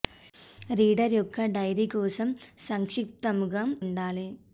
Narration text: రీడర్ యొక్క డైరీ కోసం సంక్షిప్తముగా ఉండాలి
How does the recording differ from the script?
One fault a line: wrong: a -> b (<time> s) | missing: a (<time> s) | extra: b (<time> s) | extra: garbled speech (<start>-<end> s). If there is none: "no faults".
no faults